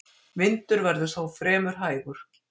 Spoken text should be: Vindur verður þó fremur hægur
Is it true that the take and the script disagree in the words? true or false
false